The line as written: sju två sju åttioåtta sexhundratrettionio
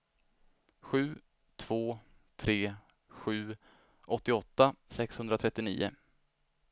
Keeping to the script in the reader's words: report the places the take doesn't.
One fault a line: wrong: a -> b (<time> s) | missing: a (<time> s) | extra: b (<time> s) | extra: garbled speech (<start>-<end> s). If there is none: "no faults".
extra: tre (2.4 s)